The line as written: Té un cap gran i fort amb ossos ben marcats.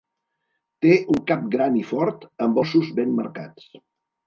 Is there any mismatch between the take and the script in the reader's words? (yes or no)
no